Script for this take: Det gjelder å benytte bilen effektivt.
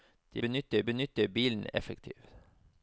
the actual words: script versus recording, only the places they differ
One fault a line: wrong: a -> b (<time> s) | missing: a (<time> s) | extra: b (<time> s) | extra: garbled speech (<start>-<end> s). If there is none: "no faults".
wrong: gjelder -> benytte (0.4 s)